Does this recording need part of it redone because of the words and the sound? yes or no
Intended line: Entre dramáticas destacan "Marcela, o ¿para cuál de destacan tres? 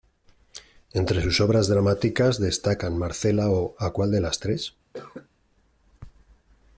yes